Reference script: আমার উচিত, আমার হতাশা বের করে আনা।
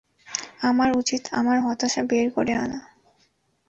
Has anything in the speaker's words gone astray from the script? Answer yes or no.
no